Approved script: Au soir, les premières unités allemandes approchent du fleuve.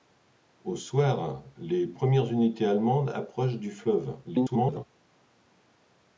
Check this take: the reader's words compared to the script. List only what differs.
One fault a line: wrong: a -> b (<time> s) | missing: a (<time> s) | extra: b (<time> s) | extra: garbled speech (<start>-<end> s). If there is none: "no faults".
extra: garbled speech (4.2-4.8 s)